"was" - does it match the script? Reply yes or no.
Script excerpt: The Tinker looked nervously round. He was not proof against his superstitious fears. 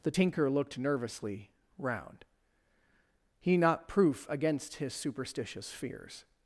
no